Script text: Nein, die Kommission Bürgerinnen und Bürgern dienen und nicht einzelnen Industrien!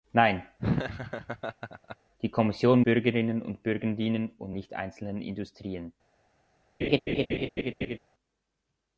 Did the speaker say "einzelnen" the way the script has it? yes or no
yes